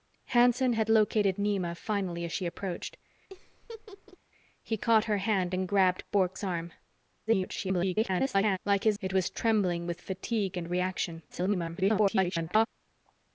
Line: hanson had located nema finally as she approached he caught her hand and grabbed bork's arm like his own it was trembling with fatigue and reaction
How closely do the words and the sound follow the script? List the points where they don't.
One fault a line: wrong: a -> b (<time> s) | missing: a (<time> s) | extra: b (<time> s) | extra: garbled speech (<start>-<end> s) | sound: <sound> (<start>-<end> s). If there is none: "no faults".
sound: laugh (3.3-4.2 s)
extra: garbled speech (7.3-8.6 s)
missing: own (9.0 s)
extra: garbled speech (11.3-12.7 s)